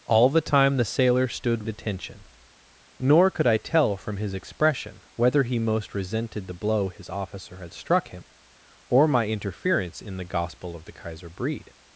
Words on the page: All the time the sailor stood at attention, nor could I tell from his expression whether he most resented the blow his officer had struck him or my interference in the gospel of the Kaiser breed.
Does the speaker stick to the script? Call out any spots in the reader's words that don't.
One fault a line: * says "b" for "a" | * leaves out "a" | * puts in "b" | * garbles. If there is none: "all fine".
all fine